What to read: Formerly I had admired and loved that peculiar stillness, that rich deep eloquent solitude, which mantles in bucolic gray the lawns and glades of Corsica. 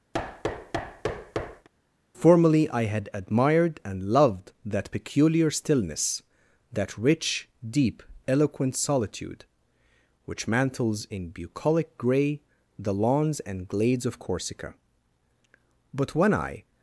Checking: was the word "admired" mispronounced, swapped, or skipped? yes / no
no